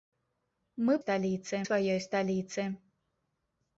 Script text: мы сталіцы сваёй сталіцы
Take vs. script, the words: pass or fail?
pass